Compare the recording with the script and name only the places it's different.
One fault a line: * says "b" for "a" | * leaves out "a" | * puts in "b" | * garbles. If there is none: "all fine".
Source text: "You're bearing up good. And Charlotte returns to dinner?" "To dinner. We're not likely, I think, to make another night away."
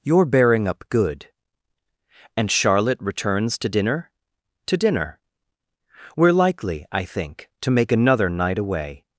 * leaves out "not"